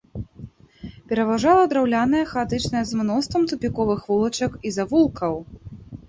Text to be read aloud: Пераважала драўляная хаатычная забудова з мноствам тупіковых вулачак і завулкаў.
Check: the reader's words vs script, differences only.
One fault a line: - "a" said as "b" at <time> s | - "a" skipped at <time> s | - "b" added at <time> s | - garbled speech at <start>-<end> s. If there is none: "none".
- "забудова" skipped at 2.8 s